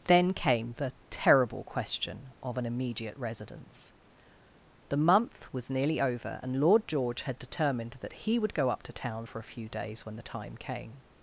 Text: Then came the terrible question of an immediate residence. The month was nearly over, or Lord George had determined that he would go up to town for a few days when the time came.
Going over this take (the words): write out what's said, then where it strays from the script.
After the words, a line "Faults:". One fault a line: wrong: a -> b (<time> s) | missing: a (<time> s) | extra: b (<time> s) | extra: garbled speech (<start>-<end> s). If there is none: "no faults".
Then came the terrible question of an immediate residence. The month was nearly over, and Lord George had determined that he would go up to town for a few days when the time came.
Faults:
wrong: or -> and (6.4 s)